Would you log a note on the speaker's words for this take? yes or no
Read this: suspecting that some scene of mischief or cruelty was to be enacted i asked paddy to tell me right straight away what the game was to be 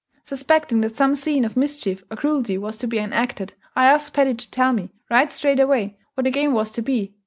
no